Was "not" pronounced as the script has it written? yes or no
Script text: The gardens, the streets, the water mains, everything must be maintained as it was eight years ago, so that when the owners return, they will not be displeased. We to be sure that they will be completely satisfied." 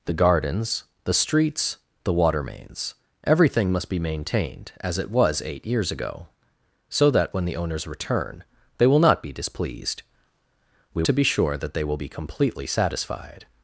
yes